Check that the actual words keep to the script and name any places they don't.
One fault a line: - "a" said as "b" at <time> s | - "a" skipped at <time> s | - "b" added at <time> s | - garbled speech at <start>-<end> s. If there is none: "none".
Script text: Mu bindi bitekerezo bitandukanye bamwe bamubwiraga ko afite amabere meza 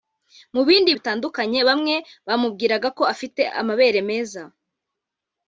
- "bitekerezo" skipped at 0.9 s